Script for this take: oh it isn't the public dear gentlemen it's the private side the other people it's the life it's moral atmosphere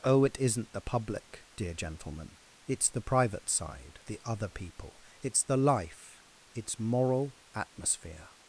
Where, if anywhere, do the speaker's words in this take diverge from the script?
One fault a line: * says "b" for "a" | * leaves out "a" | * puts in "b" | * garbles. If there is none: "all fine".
all fine